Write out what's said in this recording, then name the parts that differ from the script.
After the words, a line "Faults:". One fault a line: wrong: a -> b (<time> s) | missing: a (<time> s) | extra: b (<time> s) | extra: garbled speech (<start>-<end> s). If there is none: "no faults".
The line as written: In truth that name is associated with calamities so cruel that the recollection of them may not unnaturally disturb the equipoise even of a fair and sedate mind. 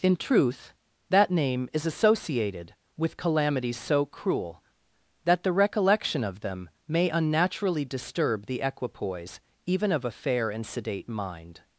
In truth that name is associated with calamities so cruel that the recollection of them may unnaturally disturb the equipoise even of a fair and sedate mind.
Faults:
missing: not (7.1 s)